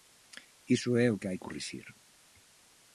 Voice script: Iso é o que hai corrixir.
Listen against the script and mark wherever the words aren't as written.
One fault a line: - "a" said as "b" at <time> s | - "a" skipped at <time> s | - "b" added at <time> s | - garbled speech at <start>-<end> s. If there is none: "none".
none